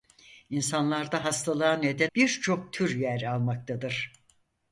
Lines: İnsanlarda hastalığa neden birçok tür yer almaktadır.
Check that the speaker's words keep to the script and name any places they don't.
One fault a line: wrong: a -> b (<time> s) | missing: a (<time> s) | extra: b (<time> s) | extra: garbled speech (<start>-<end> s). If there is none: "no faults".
no faults